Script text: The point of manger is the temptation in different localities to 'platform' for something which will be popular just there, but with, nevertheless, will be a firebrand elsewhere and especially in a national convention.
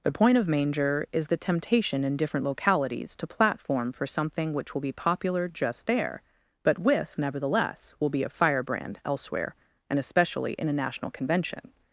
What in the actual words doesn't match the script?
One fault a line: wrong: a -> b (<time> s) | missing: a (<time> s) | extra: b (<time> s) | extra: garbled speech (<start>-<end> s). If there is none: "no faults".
no faults